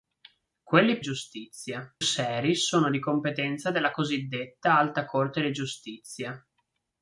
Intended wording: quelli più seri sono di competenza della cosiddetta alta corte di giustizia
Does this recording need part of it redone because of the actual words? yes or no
yes